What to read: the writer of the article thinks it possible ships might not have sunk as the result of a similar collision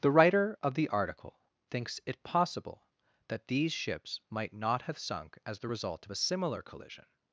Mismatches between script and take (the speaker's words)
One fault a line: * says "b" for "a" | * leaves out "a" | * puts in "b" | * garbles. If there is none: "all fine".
* puts in "that these"